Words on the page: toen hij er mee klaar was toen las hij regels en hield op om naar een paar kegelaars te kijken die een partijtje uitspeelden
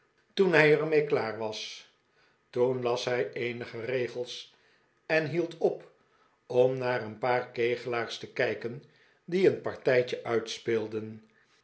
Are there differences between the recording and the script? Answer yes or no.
yes